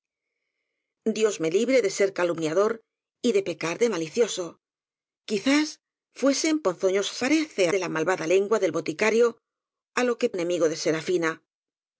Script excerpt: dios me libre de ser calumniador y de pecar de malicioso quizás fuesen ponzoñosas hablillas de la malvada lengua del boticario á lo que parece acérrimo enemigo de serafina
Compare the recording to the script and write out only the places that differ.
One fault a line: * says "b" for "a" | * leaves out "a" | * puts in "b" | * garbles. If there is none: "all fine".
* says "parece" for "hablillas"
* leaves out "parece acérrimo"